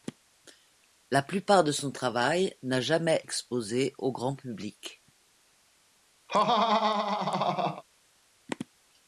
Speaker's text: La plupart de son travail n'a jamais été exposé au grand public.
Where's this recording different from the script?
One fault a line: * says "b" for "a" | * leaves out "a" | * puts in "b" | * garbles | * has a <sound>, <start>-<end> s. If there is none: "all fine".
* leaves out "été"
* has a laugh, 6.3-7.8 s